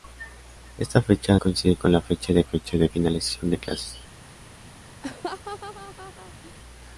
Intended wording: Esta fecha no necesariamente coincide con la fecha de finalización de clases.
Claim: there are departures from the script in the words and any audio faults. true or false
true